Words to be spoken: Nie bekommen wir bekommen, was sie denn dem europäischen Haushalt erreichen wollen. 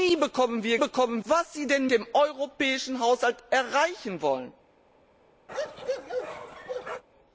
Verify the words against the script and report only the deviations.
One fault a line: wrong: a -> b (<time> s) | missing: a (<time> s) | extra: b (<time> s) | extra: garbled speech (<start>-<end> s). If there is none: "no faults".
no faults